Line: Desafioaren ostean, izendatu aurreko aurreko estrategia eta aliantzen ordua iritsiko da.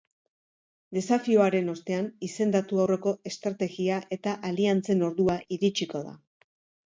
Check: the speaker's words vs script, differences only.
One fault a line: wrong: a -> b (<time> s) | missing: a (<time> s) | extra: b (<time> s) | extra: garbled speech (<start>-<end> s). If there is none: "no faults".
missing: aurreko (3.1 s)